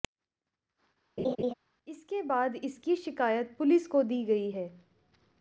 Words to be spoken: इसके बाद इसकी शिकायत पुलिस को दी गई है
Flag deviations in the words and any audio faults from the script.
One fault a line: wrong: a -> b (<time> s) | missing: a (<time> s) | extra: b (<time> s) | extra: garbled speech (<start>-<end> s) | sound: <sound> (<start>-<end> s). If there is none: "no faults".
sound: laugh (1.2-1.5 s)